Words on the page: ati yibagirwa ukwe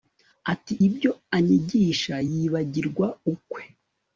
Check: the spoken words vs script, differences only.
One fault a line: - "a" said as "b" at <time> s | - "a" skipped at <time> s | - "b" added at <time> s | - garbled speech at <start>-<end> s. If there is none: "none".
- "ibyo anyigisha" added at 0.9 s